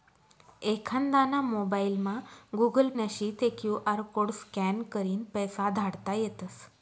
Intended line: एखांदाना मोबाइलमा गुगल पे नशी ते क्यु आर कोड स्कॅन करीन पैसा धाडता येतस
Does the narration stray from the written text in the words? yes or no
yes